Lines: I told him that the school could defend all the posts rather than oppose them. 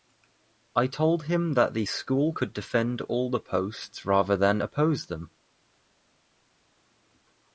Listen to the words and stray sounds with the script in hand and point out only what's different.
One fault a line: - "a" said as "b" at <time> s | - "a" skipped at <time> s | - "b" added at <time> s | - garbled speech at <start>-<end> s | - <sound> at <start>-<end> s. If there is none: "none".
none